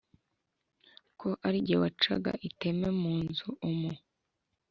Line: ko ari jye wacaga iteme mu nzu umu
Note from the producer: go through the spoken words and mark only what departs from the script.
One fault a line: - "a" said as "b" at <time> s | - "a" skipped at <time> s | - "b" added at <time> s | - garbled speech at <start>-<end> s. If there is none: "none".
none